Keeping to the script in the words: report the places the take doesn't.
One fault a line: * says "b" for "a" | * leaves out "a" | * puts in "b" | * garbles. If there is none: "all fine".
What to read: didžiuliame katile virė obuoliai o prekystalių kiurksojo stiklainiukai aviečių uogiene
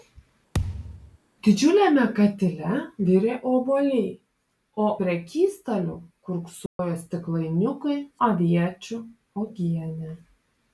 all fine